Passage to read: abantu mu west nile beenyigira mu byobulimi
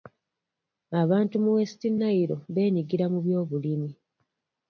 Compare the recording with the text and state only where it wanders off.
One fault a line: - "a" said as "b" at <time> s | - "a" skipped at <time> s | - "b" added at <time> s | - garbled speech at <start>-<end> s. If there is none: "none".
none